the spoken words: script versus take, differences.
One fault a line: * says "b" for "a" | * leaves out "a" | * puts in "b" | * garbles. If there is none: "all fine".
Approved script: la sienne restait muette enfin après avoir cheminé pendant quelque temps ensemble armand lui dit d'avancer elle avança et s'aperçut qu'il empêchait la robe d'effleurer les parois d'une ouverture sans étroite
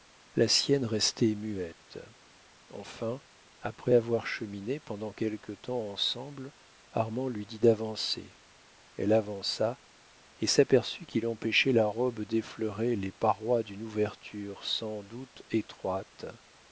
* puts in "doute"